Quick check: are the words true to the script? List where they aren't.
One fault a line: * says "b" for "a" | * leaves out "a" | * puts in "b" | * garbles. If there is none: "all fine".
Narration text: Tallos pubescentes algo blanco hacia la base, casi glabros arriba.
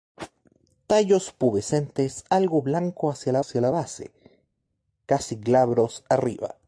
* puts in "hacia la"